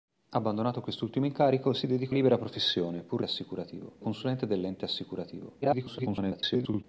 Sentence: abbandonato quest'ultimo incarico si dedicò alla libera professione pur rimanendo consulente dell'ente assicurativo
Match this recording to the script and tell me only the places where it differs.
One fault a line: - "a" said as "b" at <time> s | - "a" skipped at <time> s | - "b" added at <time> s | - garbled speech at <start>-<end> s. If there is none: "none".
- "alla" skipped at 2.1 s
- "rimanendo" said as "assicurativo" at 3.2 s
- garbled speech at 5.6-6.8 s